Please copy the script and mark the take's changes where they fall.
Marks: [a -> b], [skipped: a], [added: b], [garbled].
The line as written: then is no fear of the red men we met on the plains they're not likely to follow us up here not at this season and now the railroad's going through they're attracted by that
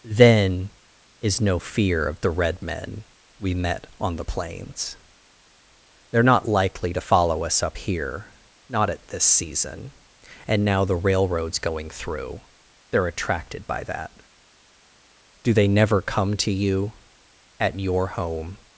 then is no fear of the red men we met on the plains they're not likely to follow us up here not at this season and now the railroad's going through they're attracted by that [added: do they never come to you at your home]